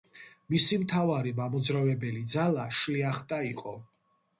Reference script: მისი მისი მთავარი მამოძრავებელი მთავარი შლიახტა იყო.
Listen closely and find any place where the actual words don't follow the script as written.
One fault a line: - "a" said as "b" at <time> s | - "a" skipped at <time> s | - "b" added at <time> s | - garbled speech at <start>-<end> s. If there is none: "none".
- "მისი" skipped at 0.8 s
- "მთავარი" said as "ძალა" at 2.4 s